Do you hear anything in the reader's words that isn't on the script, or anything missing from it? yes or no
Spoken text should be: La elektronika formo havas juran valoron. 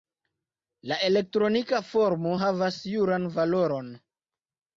no